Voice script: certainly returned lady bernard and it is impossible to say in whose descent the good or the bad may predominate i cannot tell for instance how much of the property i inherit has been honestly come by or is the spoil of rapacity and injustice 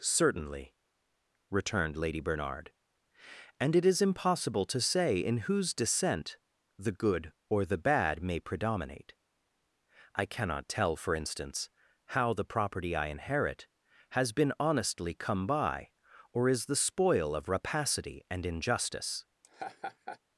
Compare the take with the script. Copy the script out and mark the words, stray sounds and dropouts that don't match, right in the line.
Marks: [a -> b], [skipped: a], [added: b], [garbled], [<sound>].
certainly returned lady bernard and it is impossible to say in whose descent the good or the bad may predominate i cannot tell for instance how [skipped: much of] the property i inherit has been honestly come by or is the spoil of rapacity and injustice [laugh]